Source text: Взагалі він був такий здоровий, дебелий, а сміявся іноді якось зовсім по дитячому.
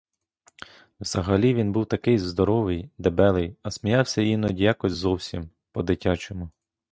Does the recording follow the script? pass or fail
pass